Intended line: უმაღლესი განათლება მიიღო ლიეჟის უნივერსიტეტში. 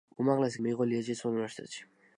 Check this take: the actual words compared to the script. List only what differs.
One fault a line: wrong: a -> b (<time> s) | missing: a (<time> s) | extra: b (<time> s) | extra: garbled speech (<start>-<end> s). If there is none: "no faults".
missing: განათლება (0.6 s)